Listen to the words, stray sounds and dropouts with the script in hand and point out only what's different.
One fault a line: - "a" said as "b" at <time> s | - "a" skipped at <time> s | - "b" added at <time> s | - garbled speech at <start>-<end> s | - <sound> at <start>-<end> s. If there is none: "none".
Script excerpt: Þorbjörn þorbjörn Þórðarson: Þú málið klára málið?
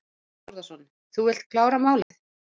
- "þorbjörn" skipped at 0.5 s
- "málið" said as "vilt" at 1.3 s
- dropout at 2.0-2.1 s